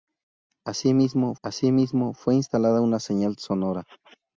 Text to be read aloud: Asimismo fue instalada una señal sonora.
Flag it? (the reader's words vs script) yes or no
yes